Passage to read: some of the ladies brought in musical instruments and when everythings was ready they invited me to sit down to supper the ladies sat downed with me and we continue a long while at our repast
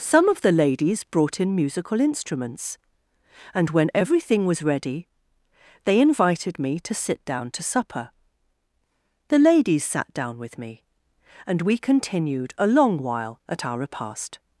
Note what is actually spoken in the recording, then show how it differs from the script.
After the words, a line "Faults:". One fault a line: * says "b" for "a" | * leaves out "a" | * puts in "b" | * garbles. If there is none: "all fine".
some of the ladies brought in musical instruments and when everything was ready they invited me to sit down to supper the ladies sat down with me and we continued a long while at our repast
Faults:
* says "everything" for "everythings"
* says "down" for "downed"
* says "continued" for "continue"